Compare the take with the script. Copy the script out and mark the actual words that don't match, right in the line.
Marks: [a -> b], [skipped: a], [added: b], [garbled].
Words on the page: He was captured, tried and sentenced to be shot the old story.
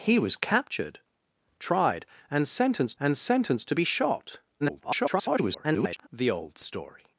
He was captured, tried and sentenced [added: and sentenced] to be shot [garbled] the old story.